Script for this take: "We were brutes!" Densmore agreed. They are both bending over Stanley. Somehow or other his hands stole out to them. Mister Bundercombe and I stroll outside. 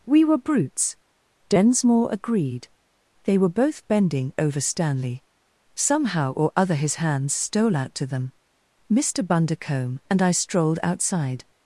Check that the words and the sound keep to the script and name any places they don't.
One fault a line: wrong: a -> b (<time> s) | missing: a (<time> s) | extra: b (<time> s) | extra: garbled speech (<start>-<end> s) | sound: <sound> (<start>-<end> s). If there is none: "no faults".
wrong: are -> were (3.4 s)
wrong: stroll -> strolled (10.3 s)